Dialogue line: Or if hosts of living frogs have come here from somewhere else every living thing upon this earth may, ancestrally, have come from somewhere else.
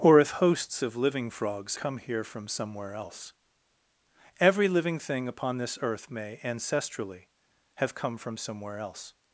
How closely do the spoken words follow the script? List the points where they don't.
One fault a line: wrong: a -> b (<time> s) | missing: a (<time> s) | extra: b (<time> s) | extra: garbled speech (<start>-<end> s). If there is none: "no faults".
missing: have (1.8 s)